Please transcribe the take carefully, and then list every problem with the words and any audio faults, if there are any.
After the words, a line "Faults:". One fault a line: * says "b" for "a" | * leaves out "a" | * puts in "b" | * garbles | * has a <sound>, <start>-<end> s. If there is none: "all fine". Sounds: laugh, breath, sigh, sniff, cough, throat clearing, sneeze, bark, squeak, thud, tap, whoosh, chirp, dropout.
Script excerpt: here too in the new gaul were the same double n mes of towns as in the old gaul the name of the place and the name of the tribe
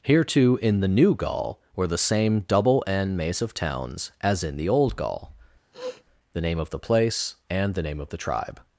here too in the new gaul were the same double n mace of towns as in the old gaul the name of the place and the name of the tribe
Faults:
* says "mace" for "mes"
* has a sniff, 5.7-6.0 s